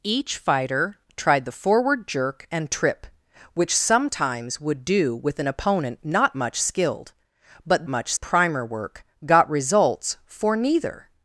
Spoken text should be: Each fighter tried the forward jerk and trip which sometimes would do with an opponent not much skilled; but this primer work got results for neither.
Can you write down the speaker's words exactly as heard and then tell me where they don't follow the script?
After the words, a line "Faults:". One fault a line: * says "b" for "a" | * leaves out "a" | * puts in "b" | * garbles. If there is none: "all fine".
Each fighter tried the forward jerk and trip which sometimes would do with an opponent not much skilled; but much primer work got results for neither.
Faults:
* says "much" for "this"